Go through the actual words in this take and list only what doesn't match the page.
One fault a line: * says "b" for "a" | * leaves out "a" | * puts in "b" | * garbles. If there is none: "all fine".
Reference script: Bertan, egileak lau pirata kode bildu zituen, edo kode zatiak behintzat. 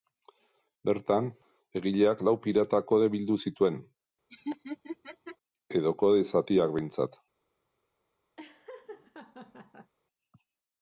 all fine